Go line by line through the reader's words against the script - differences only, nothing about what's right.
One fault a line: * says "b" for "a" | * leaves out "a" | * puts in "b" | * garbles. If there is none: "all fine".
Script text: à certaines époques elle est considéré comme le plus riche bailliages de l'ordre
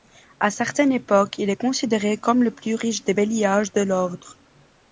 * says "il" for "elle"
* puts in "des"